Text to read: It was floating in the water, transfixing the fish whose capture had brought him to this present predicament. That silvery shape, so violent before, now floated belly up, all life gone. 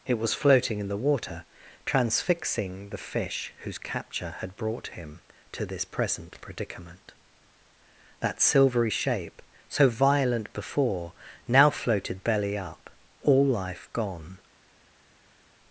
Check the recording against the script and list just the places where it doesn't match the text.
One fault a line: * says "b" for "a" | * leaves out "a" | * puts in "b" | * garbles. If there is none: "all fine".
all fine